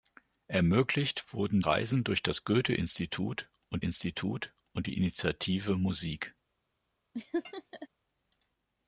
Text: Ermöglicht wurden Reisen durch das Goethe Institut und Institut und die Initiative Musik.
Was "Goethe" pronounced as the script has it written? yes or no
yes